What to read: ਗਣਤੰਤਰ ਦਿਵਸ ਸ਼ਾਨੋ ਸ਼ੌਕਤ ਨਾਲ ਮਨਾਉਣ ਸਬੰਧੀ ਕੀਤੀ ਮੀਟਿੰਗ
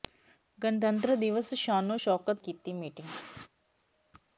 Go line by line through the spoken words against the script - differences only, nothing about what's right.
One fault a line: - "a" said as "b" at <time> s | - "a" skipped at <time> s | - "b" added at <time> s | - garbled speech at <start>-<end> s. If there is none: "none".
- "ਨਾਲ ਮਨਾਉਣ ਸਬੰਧੀ" skipped at 2.4 s